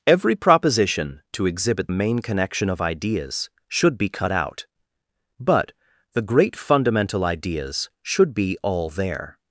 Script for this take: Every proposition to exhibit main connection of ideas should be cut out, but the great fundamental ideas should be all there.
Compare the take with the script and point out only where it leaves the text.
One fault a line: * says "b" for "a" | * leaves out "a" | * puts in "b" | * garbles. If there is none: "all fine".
all fine